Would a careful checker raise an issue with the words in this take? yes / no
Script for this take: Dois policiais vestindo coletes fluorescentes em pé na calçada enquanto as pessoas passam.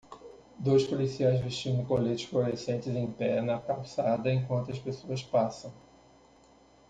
no